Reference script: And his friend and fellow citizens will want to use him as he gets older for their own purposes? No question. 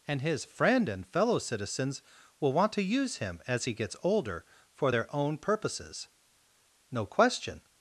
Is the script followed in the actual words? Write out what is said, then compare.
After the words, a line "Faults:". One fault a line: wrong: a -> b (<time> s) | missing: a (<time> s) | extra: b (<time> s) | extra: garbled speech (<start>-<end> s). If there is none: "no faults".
And his friend and fellow citizens will want to use him as he gets older for their own purposes? No question.
Faults:
no faults